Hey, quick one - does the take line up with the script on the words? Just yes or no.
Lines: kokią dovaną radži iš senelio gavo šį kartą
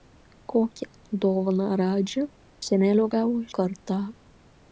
no